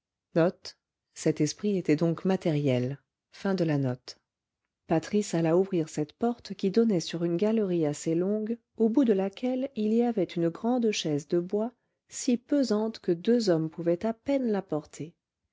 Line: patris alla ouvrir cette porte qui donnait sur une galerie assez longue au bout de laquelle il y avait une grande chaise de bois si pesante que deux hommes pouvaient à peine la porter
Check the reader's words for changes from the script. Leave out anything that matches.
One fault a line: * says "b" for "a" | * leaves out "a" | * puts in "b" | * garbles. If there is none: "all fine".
all fine